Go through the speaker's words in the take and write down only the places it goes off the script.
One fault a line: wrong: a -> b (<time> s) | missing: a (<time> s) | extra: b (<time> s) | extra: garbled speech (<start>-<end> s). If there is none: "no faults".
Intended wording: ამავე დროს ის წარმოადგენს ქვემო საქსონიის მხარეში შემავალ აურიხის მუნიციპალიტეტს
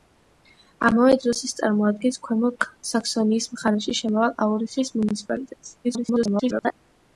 extra: garbled speech (5.8-6.7 s)